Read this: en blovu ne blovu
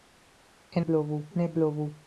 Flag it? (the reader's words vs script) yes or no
no